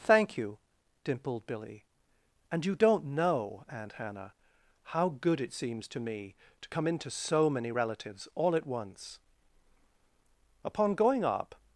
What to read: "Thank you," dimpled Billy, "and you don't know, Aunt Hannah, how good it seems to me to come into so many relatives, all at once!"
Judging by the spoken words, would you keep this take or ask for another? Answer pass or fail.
fail